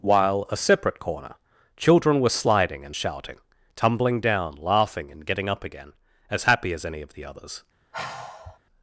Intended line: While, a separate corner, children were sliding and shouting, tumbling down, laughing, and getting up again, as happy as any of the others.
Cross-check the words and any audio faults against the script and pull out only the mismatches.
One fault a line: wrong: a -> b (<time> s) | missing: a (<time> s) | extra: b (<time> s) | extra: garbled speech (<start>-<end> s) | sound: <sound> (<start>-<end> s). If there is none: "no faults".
sound: sigh (7.9-8.6 s)